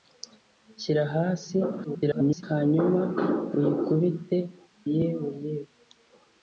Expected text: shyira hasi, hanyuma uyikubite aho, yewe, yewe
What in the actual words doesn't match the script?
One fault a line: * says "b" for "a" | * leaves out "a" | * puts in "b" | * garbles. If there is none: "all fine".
* garbles
* leaves out "aho"